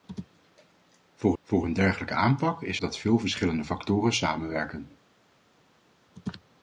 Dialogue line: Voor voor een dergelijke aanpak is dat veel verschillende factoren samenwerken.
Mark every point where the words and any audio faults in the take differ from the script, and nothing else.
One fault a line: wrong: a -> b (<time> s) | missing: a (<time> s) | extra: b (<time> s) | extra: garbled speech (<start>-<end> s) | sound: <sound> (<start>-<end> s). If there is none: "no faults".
no faults